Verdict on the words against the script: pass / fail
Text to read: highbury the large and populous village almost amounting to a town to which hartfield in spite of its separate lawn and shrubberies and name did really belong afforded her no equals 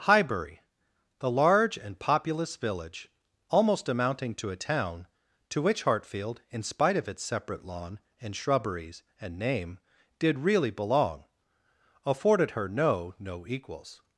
fail